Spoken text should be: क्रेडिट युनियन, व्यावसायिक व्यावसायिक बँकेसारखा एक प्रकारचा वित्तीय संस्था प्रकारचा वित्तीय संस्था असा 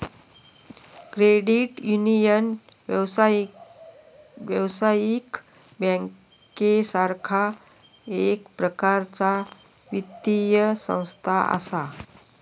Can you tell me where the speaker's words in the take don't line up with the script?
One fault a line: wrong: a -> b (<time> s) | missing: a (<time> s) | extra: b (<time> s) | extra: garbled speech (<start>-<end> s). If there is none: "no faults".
missing: व्यावसायिक (5.4 s)
missing: प्रकारचा वित्तीय संस्था (11.4 s)